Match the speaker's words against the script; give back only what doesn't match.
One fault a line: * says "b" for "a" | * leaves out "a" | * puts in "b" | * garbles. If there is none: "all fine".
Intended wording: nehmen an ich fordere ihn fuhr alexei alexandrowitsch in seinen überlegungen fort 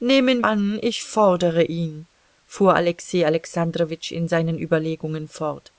all fine